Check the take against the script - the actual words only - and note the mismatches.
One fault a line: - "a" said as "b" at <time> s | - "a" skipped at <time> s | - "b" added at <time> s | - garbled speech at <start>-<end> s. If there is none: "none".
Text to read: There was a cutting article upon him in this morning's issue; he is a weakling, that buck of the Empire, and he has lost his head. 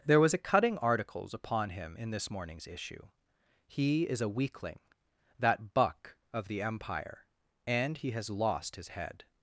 - "article" said as "articles" at 0.8 s